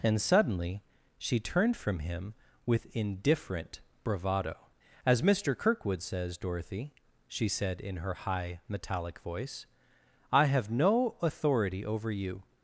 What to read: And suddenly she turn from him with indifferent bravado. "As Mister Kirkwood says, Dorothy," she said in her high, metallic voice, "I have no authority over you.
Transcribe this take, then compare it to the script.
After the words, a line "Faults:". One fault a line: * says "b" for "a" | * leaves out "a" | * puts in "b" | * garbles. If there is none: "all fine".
And suddenly she turned from him with indifferent bravado. "As Mister Kirkwood says, Dorothy," she said in her high, metallic voice, "I have no authority over you.
Faults:
* says "turned" for "turn"